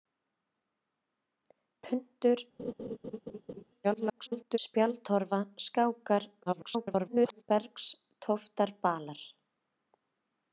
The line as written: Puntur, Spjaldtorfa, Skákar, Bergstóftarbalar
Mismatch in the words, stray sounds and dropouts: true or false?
true